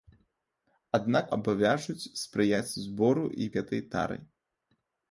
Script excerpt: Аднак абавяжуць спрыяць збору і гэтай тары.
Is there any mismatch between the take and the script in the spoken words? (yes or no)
no